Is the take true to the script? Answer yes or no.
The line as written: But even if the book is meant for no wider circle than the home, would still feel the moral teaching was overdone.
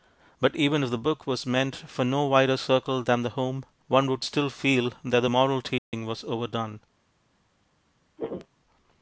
no